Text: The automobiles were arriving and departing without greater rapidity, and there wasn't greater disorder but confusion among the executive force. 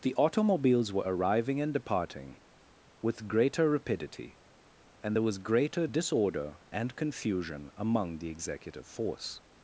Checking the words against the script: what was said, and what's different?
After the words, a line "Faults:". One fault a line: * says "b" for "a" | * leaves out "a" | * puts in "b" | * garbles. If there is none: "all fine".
The automobiles were arriving and departing with greater rapidity, and there was greater disorder and confusion among the executive force.
Faults:
* says "with" for "without"
* says "was" for "wasn't"
* says "and" for "but"